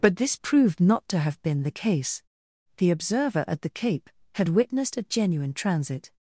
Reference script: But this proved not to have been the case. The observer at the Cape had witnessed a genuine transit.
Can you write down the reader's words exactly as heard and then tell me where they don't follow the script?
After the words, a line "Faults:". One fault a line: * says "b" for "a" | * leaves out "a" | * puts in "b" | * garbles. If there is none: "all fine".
But this proved not to have been the case. The observer at the Cape had witnessed a genuine transit.
Faults:
all fine